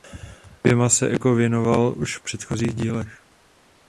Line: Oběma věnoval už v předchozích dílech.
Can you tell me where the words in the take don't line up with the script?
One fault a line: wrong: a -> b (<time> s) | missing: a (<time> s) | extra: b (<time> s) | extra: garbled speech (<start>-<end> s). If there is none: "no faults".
extra: se Eco (0.9 s)